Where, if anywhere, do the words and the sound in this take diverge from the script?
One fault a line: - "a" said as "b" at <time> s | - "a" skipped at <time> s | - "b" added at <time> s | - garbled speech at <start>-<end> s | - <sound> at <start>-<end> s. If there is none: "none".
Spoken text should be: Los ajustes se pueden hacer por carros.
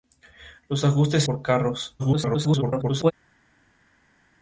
- "se pueden hacer" skipped at 1.2 s
- garbled speech at 2.0-3.1 s